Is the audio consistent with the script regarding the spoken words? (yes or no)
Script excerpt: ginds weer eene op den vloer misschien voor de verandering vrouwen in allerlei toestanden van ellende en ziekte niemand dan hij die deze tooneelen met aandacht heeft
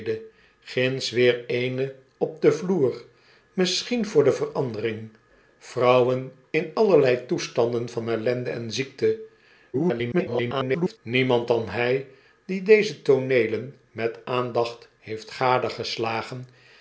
no